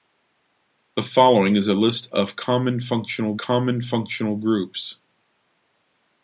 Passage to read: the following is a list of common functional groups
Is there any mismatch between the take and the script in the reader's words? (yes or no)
yes